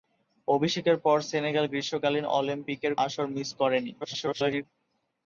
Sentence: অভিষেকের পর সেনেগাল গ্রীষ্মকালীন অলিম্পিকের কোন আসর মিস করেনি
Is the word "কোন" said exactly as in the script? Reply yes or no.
no